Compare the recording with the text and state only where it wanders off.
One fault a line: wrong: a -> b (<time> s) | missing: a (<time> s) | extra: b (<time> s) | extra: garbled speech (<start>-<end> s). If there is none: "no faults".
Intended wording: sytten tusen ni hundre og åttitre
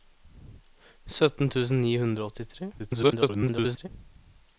extra: garbled speech (2.8-3.9 s)